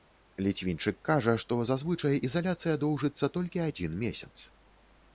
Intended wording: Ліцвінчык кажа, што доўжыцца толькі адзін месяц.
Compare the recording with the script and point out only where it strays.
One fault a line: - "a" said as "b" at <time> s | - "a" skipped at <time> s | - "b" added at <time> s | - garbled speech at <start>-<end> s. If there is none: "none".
- "зазвычай ізаляцыя" added at 1.7 s